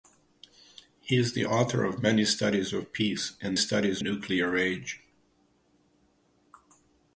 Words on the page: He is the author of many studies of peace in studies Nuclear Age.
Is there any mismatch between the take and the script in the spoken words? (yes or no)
no